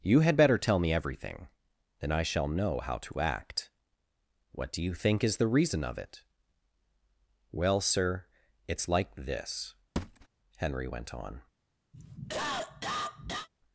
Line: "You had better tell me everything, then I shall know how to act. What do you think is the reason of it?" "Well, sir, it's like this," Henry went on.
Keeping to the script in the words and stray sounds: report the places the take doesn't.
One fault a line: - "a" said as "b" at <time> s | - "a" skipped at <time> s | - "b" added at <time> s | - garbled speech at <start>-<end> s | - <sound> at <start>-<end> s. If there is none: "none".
- thud at 10.0-10.3 s
- cough at 11.9-13.5 s